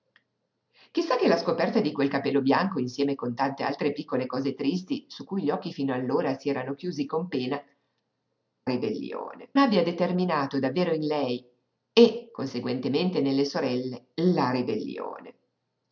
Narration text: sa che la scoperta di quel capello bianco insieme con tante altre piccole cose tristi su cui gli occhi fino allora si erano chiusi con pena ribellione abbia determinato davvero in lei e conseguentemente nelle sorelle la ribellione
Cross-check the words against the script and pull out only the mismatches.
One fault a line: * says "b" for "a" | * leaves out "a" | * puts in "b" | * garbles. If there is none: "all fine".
all fine